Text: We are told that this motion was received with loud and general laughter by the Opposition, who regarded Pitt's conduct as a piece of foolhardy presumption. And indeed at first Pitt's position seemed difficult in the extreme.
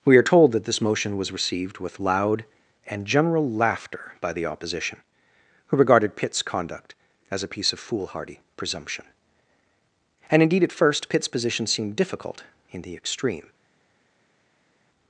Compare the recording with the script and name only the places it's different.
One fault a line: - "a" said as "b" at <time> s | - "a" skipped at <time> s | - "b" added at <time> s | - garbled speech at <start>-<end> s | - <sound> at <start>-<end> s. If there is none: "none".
none